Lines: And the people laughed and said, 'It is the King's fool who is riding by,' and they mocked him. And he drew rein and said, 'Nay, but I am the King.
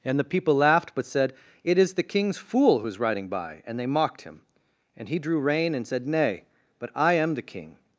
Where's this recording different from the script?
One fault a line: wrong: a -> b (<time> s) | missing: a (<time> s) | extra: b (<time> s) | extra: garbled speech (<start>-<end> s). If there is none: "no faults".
wrong: and -> but (0.9 s)